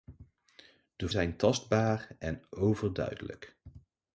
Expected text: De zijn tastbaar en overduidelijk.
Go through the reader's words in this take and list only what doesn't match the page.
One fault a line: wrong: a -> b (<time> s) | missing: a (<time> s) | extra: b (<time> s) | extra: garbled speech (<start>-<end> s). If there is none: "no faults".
no faults